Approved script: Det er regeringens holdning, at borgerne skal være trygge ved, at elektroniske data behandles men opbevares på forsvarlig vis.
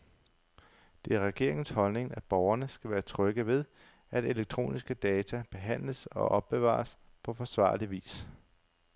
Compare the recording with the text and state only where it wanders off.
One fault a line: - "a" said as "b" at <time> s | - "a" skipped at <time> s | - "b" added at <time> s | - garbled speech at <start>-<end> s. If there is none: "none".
- "men" said as "og" at 6.0 s